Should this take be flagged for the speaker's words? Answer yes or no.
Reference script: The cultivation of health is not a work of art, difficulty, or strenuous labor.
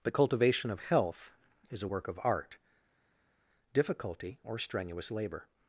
yes